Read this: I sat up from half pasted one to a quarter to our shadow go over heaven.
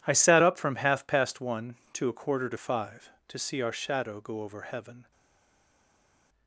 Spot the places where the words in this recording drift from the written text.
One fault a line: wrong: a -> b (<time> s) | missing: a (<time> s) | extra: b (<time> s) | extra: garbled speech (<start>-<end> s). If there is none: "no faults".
wrong: pasted -> past (1.1 s)
extra: five to see (2.6 s)